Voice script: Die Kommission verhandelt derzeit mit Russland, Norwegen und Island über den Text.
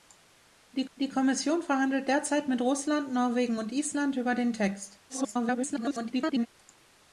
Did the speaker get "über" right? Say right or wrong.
right